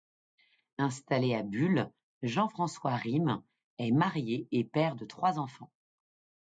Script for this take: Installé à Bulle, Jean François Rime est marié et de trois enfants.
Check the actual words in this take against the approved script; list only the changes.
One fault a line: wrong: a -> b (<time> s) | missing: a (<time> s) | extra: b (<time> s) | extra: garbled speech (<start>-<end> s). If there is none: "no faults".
extra: père (4.6 s)